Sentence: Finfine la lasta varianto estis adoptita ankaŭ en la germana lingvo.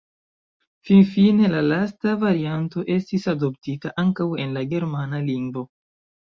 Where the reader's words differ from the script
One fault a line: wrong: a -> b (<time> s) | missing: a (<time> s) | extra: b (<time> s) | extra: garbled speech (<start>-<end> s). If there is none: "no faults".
no faults